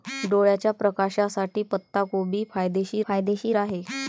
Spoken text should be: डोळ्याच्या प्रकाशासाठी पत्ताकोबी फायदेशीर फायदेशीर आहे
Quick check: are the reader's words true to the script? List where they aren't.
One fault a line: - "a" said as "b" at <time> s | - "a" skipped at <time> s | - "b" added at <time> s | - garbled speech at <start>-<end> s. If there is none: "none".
none